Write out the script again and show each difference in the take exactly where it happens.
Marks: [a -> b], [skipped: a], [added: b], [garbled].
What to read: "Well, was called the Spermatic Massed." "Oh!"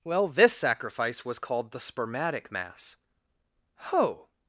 "Well, [added: this sacrifice] was called the Spermatic [Massed." -> Mass] "Oh!"